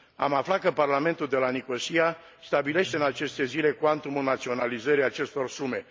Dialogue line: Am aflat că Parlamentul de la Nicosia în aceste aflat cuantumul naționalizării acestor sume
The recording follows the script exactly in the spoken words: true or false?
false